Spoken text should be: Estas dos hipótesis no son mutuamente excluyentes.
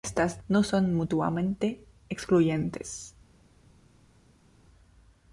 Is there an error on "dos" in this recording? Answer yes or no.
yes